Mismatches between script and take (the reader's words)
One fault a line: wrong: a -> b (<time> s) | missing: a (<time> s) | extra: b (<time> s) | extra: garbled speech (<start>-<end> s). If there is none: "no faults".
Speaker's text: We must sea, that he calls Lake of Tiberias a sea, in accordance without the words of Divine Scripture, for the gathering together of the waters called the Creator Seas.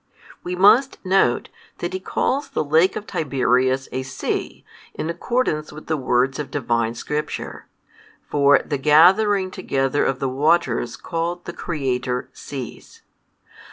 wrong: sea -> note (1.1 s)
extra: the (2.5 s)
wrong: without -> with (5.7 s)